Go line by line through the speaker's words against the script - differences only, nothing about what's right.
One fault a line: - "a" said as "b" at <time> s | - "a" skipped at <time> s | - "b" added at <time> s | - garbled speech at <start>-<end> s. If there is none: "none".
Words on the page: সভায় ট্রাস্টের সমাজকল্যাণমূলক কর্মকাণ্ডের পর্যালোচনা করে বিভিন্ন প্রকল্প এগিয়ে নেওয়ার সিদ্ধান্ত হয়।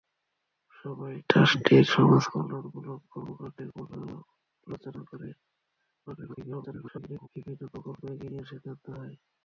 - garbled speech at 6.1-7.3 s